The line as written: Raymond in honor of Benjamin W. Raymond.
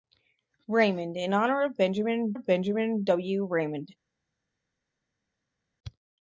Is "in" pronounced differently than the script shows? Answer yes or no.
no